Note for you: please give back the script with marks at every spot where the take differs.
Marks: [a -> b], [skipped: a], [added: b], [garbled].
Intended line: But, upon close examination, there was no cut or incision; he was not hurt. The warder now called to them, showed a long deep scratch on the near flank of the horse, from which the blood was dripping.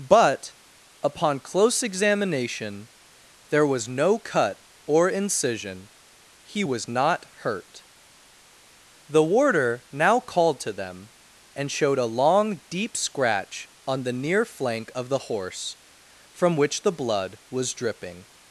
But, upon close examination, there was no cut or incision; he was not hurt. The warder now called to them, [added: and] showed a long deep scratch on the near flank of the horse, from which the blood was dripping.